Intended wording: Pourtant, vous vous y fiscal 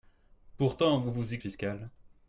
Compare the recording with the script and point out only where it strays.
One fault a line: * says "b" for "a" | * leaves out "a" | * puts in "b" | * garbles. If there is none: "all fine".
all fine